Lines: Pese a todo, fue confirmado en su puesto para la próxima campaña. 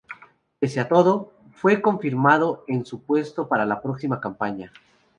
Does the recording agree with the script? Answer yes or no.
yes